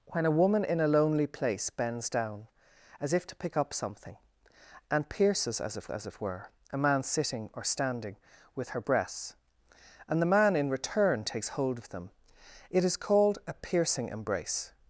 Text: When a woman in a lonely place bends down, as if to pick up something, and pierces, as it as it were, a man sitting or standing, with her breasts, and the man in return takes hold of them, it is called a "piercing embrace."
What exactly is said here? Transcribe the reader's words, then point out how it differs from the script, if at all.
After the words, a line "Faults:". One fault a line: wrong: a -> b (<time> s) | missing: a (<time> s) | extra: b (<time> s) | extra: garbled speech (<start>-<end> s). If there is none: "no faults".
When a woman in a lonely place bends down, as if to pick up something, and pierces, as it as it were, a man sitting or standing, with her breasts, and the man in return takes hold of them, it is called a "piercing embrace."
Faults:
no faults